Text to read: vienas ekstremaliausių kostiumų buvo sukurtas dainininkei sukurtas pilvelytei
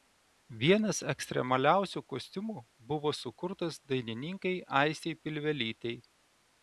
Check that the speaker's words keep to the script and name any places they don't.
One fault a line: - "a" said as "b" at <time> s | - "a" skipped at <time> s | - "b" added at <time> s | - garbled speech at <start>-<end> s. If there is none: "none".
- "sukurtas" said as "aistei" at 4.8 s